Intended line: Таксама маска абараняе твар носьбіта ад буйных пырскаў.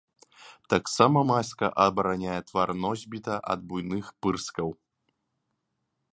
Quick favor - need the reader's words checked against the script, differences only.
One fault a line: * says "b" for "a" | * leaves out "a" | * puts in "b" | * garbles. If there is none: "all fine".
all fine